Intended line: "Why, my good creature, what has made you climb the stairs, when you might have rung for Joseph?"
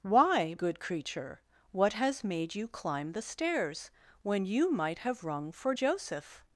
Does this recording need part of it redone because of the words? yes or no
yes